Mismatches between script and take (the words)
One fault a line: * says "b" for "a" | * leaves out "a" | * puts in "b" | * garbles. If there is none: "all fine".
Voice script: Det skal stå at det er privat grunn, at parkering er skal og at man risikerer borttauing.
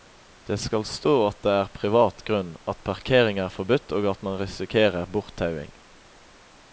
* says "forbudt" for "skal"